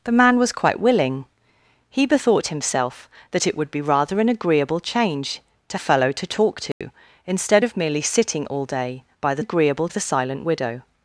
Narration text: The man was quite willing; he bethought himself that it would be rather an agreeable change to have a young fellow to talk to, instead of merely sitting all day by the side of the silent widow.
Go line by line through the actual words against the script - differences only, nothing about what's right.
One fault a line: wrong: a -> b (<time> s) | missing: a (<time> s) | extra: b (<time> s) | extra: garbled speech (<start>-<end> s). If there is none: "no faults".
missing: have a young (5.8 s)
wrong: side -> agreeable (9.4 s)